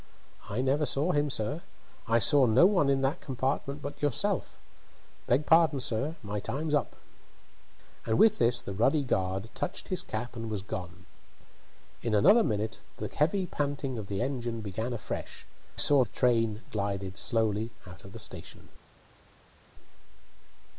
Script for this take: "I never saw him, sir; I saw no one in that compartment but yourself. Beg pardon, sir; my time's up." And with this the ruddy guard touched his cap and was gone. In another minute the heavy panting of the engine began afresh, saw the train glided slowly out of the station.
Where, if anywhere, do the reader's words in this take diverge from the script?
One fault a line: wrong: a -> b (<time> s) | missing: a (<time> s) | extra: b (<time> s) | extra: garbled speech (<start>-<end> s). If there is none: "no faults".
no faults